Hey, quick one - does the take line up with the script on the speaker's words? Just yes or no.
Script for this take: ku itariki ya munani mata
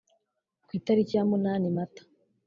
yes